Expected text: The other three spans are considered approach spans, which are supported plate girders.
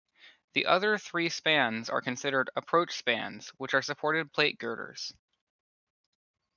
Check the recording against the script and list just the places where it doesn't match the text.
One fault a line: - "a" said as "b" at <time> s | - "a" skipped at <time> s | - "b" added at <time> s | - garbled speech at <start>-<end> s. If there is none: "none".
none